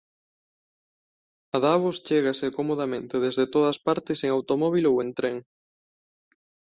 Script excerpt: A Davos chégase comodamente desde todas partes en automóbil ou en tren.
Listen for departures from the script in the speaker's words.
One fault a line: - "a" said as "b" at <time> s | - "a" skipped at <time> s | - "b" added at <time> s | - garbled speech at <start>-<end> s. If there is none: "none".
none